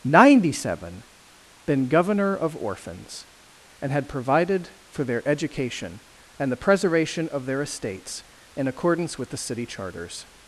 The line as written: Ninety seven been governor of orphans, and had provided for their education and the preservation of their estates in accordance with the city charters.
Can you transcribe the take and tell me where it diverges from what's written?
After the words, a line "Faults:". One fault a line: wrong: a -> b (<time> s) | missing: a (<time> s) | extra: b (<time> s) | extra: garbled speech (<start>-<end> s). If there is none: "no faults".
Ninety seven been governor of orphans, and had provided for their education and the preservation of their estates in accordance with the city charters.
Faults:
no faults